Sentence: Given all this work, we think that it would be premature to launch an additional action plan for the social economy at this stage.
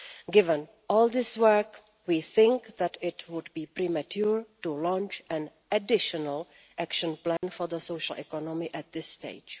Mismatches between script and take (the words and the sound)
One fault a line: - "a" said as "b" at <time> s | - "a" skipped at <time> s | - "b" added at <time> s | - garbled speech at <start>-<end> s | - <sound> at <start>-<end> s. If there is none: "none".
- dropout at 7.4-7.4 s